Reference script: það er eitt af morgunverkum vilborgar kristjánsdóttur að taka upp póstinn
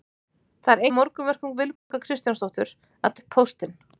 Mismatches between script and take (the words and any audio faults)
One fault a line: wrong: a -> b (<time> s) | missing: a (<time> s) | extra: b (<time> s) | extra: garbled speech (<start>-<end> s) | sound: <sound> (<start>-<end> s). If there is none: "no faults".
missing: eitt (0.9 s)
sound: dropout (1.8-1.9 s)
missing: taka (3.2 s)